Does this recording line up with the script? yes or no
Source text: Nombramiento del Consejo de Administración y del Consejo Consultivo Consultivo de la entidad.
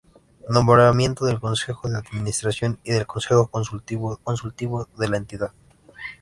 yes